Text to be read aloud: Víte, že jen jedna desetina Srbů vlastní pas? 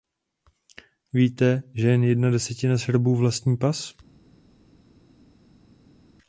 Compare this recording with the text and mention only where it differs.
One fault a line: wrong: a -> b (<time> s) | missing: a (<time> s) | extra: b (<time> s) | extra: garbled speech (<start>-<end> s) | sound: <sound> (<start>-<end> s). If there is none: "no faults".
no faults